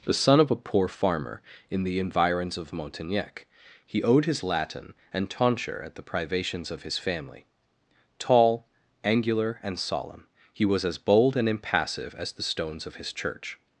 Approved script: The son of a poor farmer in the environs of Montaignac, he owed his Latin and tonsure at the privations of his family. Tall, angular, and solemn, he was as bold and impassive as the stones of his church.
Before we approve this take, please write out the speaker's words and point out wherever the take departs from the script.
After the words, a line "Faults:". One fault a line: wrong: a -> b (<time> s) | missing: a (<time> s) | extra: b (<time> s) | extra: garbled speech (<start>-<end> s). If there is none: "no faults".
The son of a poor farmer in the environs of Montaignac, he owed his Latin and tonsure at the privations of his family. Tall, angular, and solemn, he was as bold and impassive as the stones of his church.
Faults:
no faults